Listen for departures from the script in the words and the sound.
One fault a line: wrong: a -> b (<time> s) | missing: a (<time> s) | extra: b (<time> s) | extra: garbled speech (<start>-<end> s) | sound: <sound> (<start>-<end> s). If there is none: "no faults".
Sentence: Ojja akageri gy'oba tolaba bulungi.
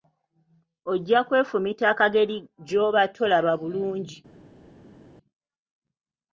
extra: kwefumita (1.3 s)